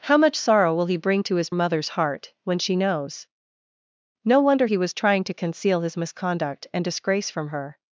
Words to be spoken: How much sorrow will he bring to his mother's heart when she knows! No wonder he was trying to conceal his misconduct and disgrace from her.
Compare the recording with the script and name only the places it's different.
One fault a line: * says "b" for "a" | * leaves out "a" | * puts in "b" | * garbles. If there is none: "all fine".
all fine